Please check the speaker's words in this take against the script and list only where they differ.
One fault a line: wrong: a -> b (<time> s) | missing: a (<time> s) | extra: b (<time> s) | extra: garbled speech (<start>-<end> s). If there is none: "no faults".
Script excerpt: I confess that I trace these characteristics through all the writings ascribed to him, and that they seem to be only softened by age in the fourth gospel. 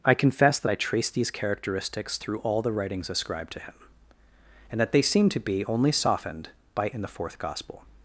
missing: age (6.9 s)